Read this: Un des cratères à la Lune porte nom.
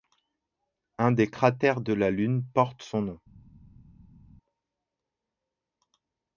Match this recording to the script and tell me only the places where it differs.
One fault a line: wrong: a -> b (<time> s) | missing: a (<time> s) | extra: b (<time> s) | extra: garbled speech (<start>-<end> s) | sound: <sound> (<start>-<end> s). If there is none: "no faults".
wrong: à -> de (1.8 s)
extra: son (2.8 s)